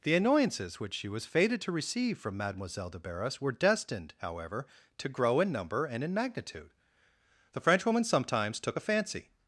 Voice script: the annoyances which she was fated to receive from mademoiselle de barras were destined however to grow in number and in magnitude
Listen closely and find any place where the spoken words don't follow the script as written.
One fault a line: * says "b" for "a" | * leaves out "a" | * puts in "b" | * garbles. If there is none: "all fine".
* puts in "the frenchwoman sometimes took a fancy"